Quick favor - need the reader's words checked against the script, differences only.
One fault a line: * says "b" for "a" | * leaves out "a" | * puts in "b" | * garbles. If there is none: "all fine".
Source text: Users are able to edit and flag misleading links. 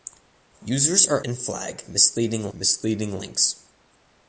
* leaves out "able to edit"
* puts in "misleading"